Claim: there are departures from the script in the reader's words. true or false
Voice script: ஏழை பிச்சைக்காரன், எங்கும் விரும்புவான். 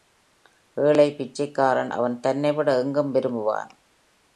true